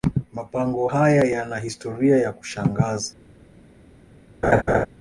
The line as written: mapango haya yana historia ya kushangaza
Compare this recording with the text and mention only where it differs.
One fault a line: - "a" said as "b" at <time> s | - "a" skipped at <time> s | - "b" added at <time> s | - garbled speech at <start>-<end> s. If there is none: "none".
none